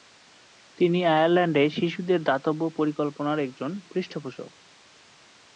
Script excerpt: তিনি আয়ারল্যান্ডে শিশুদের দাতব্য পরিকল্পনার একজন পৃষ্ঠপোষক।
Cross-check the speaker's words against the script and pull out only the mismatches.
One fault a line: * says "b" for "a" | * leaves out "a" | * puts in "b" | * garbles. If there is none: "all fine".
all fine